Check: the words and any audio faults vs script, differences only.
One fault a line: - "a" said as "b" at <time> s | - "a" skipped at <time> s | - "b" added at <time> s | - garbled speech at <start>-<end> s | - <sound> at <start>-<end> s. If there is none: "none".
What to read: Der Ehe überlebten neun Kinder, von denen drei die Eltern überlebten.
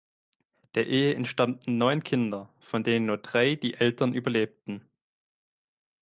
- "überlebten" said as "entstammten" at 1.1 s
- "nur" added at 3.1 s